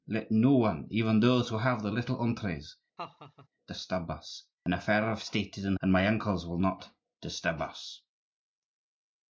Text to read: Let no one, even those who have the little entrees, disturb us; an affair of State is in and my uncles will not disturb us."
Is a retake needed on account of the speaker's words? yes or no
no